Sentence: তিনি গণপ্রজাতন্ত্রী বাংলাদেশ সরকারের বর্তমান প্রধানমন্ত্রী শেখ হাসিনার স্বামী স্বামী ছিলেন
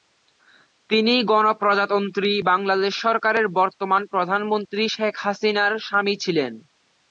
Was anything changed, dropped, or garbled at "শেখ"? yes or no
no